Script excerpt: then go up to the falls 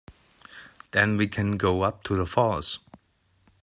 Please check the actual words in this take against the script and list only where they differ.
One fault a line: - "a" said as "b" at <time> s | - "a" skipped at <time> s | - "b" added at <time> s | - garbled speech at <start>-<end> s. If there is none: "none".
- "we can" added at 1.1 s